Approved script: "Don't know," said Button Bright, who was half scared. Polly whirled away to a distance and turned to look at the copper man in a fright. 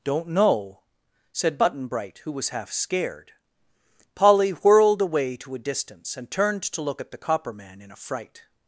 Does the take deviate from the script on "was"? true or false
false